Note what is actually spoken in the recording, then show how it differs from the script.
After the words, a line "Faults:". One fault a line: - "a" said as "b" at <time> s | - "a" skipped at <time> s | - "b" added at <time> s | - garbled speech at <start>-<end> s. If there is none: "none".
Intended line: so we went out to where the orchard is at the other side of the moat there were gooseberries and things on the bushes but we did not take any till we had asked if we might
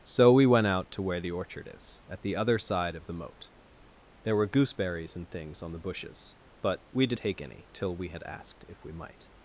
so we went out to where the orchard is at the other side of the moat there were gooseberries and things on the bushes but we did take any till we had asked if we might
Faults:
- "not" skipped at 7.2 s